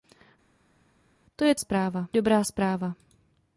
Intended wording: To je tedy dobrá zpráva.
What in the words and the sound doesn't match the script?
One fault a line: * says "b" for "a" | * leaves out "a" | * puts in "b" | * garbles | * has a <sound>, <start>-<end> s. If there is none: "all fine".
* says "zpráva" for "tedy"